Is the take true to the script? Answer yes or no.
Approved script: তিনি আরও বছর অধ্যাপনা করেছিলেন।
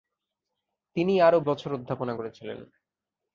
yes